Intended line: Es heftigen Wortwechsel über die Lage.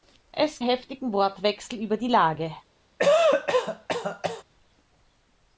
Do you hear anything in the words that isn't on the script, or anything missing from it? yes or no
no